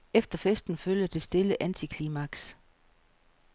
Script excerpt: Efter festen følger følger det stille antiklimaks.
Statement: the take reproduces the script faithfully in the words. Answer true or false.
false